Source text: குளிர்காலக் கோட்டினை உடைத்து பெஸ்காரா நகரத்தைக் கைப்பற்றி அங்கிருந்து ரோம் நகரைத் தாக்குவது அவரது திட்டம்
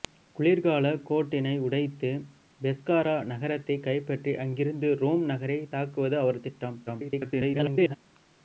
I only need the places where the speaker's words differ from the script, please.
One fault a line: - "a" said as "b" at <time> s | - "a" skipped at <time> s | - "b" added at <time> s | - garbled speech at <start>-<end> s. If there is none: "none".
- garbled speech at 6.9-8.0 s